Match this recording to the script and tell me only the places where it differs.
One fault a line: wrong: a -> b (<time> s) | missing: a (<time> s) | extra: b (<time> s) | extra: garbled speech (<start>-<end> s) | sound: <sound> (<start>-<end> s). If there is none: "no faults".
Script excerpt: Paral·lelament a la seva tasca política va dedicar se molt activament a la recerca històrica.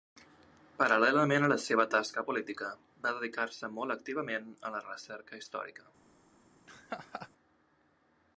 sound: laugh (6.7-7.3 s)